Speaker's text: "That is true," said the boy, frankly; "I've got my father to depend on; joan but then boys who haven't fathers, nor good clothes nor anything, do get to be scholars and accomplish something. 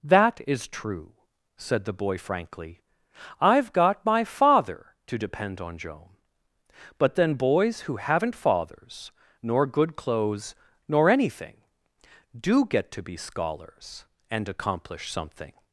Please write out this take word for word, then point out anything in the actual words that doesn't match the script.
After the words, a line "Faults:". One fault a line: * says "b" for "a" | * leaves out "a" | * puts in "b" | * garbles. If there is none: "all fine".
"That is true," said the boy, frankly; "I've got my father to depend on; joan but then boys who haven't fathers, nor good clothes nor anything, do get to be scholars and accomplish something.
Faults:
all fine